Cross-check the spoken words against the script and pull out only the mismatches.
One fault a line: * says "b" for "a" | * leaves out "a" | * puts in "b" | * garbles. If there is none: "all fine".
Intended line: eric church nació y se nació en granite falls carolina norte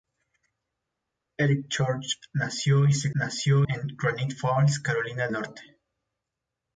all fine